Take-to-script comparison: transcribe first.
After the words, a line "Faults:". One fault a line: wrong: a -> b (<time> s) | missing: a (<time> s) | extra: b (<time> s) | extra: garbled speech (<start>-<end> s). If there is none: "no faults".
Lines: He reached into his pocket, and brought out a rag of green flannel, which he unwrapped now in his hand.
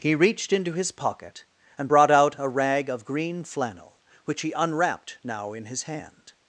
He reached into his pocket, and brought out a rag of green flannel, which he unwrapped now in his hand.
Faults:
no faults